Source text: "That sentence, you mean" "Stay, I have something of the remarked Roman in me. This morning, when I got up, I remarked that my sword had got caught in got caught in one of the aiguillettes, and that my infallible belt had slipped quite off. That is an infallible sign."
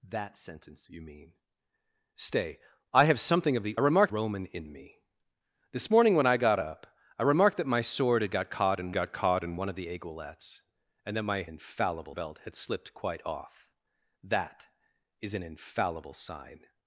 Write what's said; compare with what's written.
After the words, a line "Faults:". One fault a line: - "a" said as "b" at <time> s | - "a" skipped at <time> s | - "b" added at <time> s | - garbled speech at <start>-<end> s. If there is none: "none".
"That sentence, you mean" "Stay, I have something of the remarked Roman in me. This morning, when I got up, I remarked that my sword had got caught in got caught in one of the aiguillettes, and that my infallible belt had slipped quite off. That is an infallible sign."
Faults:
none